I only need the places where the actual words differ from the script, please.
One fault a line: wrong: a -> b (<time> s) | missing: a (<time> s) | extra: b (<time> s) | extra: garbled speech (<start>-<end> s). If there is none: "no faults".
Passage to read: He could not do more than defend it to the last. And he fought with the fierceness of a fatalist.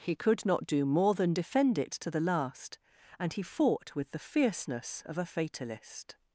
no faults